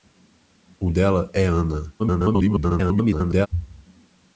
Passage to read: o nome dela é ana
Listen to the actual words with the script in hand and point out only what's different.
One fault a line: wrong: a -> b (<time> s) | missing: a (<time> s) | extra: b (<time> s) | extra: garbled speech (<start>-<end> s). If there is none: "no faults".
missing: nome (0.9 s)
extra: garbled speech (2.0-3.5 s)